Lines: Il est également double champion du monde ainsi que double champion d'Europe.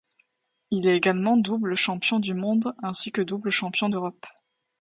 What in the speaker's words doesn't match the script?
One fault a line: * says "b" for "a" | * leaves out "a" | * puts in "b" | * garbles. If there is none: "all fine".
all fine